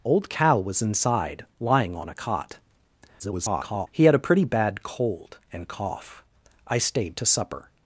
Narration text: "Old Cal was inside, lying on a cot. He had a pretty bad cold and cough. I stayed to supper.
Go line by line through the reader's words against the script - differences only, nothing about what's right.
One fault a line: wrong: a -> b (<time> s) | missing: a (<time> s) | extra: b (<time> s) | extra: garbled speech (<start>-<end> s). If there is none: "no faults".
extra: garbled speech (3.2-3.9 s)